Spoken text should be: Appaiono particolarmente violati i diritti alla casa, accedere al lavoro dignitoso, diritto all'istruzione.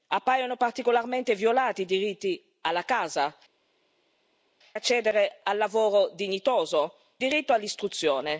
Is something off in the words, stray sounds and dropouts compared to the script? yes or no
no